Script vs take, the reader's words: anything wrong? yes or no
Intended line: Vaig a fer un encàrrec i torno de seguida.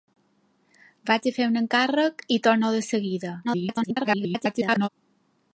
yes